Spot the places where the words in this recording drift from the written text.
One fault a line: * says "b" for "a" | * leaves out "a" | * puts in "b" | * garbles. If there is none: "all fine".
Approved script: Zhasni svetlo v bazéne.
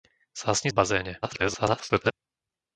* leaves out "svetlo"
* garbles